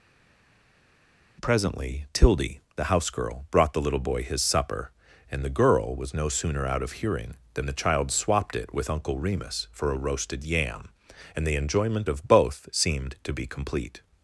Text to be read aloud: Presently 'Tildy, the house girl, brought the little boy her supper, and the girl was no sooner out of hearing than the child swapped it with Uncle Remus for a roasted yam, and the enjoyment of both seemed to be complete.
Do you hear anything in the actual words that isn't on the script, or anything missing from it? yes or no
yes